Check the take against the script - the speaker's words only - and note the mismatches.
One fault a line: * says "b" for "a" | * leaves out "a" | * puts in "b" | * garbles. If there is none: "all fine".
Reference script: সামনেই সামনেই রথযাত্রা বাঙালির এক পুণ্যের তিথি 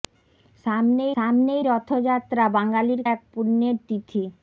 all fine